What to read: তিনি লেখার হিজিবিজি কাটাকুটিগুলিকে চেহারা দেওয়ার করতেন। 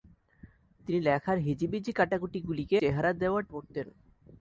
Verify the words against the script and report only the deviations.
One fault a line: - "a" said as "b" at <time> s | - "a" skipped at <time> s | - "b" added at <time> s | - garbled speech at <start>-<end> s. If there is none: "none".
none